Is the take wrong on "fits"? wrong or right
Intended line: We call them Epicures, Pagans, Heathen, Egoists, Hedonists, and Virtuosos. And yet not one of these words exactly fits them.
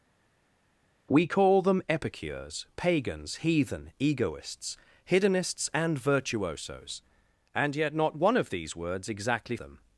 wrong